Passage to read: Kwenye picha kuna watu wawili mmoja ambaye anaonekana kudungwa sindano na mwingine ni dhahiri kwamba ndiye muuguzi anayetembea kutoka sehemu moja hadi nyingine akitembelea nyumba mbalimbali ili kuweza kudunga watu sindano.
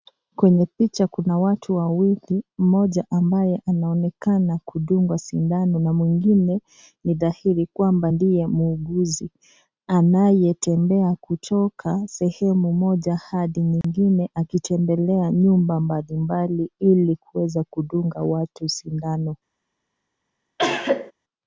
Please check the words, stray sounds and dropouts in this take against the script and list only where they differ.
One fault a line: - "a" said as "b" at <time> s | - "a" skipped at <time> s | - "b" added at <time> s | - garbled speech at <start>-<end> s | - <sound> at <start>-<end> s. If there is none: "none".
- dropout at 13.8-13.8 s
- cough at 20.6-21.1 s